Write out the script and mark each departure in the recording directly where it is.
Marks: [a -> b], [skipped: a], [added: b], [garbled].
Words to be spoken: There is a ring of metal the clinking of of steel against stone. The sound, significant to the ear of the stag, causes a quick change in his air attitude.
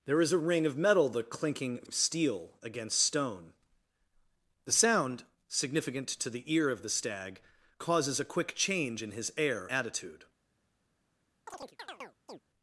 There is a ring of metal the clinking of of steel against stone. The sound, significant to the ear of the stag, causes a quick change in his air attitude.